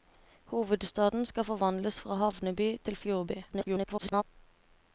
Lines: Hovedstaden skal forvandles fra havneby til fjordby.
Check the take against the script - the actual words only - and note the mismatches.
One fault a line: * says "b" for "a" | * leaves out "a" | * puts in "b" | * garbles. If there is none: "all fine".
* garbles